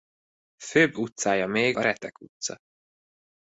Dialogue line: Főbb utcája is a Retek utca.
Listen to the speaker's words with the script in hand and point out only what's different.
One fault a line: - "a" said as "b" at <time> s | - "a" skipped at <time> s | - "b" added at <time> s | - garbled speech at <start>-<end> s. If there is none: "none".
- "is" said as "még" at 1.5 s